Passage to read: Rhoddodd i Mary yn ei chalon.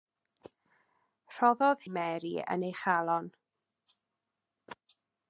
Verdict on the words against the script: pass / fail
pass